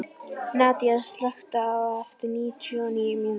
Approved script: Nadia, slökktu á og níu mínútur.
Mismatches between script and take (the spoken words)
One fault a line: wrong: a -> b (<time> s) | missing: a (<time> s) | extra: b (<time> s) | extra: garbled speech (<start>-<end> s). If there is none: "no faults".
extra: þessu eftir níutíu (1.7 s)